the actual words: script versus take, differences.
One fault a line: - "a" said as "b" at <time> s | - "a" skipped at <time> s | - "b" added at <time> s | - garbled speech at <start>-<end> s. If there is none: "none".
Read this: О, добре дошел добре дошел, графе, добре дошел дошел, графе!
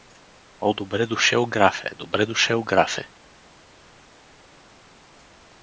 - "добре дошел" skipped at 1.4 s
- "дошел" skipped at 2.6 s